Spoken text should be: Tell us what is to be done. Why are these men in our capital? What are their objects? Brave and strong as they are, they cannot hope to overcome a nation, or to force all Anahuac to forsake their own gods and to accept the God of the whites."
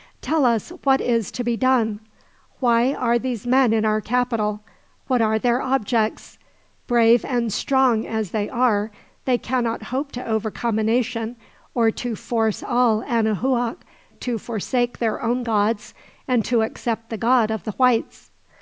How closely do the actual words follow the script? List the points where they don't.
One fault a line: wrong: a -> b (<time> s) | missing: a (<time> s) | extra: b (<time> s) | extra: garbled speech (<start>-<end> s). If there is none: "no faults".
no faults